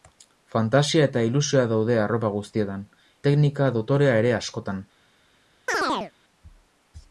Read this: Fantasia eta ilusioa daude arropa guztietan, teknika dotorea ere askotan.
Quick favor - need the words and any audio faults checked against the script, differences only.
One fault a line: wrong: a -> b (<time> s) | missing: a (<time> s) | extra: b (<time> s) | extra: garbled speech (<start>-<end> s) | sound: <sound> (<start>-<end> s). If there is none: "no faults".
sound: chirp (5.7-6.1 s)